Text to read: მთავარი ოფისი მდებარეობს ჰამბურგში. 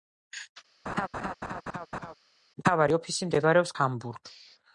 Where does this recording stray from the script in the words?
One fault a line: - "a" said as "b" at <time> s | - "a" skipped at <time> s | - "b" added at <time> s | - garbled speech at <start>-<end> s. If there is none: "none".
none